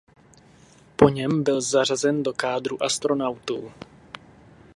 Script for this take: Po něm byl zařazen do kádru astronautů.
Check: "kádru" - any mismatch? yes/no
no